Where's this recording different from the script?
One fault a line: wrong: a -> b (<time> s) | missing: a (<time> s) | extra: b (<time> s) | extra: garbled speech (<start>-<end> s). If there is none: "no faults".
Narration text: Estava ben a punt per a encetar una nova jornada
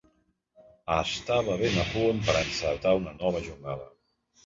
no faults